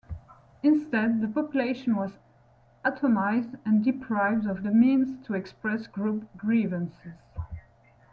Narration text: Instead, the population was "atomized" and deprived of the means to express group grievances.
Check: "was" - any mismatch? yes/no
no